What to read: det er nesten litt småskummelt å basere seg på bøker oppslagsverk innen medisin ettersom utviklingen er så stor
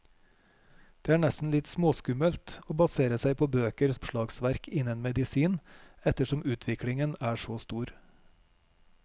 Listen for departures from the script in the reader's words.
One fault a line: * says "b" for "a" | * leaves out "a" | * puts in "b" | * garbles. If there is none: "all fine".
all fine